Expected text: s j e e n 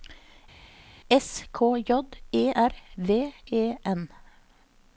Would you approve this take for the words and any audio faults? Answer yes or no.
no